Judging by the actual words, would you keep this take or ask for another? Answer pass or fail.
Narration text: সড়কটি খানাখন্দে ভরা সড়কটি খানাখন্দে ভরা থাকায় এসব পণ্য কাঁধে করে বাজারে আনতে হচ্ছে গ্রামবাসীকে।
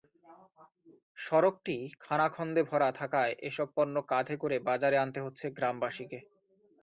fail